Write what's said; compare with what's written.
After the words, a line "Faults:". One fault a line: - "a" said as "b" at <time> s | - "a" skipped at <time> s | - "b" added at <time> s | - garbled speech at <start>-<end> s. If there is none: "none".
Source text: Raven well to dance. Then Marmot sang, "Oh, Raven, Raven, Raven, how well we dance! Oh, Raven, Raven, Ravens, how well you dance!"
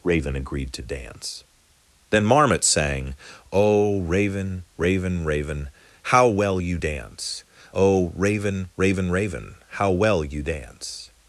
Raven agreed to dance. Then Marmot sang, "Oh, Raven, Raven, Raven, how well you dance! Oh, Raven, Raven, Raven, how well you dance!"
Faults:
- "well" said as "agreed" at 0.3 s
- "we" said as "you" at 6.6 s
- "Ravens" said as "Raven" at 9.1 s